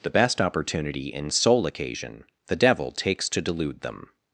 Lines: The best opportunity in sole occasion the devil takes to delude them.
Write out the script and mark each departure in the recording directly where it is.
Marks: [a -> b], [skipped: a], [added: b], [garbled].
The best opportunity in sole occasion the devil takes to delude them.